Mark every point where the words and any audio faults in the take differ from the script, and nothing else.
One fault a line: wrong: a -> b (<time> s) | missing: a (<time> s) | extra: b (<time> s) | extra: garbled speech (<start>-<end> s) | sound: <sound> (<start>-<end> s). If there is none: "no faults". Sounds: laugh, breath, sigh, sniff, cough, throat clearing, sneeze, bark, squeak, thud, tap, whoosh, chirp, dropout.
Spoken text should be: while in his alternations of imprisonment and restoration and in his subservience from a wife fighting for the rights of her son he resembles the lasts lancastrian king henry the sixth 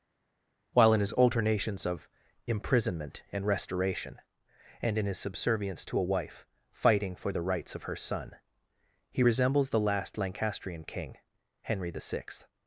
wrong: from -> to (5.9 s)
wrong: lasts -> last (9.8 s)